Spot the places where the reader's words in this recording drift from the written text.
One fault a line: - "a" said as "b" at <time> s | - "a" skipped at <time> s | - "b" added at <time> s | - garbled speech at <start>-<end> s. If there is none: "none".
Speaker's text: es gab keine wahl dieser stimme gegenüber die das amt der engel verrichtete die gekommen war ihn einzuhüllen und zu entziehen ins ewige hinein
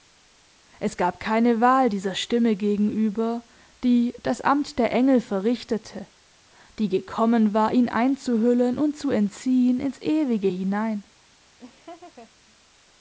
none